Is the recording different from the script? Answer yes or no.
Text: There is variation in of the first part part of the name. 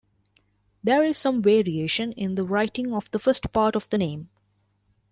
yes